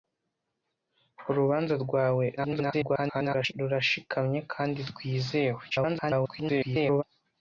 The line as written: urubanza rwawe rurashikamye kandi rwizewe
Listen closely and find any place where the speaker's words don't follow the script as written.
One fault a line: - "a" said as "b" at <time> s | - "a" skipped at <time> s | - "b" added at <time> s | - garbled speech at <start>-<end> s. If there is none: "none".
- garbled speech at 2.4-3.5 s
- garbled speech at 5.7-7.0 s